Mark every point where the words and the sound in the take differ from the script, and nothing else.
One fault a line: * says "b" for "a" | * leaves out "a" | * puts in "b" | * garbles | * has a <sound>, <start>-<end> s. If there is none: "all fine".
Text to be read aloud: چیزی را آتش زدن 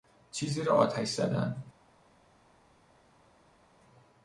all fine